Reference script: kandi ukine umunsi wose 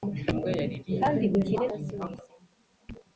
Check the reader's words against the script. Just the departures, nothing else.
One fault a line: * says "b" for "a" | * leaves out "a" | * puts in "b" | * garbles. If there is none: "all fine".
all fine